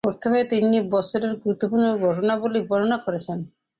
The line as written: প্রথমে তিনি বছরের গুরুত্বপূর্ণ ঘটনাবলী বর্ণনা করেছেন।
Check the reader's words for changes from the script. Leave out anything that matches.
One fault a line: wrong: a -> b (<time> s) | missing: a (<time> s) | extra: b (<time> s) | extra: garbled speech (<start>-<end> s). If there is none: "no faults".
no faults